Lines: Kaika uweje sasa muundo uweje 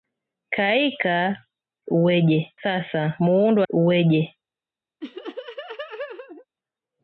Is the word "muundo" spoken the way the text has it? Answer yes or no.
yes